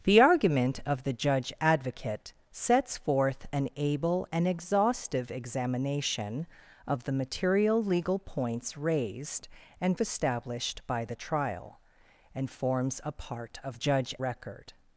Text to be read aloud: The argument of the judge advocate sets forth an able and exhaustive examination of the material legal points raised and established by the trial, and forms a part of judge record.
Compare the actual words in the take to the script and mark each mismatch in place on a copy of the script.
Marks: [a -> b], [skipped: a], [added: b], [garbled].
The argument of the judge advocate sets forth an able and exhaustive examination of the material legal points raised and established by the trial, and forms a part of judge record.